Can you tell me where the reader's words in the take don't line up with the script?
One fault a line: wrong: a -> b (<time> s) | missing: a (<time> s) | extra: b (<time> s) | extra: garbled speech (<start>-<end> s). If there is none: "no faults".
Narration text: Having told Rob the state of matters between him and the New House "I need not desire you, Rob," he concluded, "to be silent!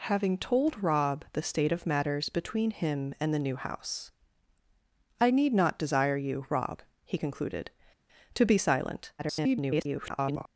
extra: garbled speech (9.2-10.5 s)